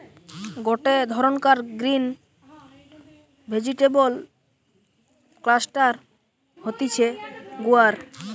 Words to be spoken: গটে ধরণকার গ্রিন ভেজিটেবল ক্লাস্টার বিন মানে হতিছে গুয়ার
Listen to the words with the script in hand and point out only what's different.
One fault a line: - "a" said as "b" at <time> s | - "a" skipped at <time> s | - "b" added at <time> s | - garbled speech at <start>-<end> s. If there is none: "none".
- "বিন মানে" skipped at 5.9 s